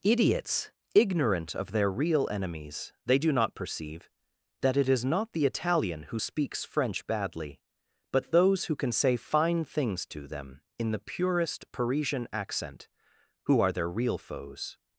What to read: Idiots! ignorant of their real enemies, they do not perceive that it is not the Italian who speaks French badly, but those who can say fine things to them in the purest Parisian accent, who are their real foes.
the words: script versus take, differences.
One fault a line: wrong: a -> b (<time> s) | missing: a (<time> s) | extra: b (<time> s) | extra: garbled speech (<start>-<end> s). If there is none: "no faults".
no faults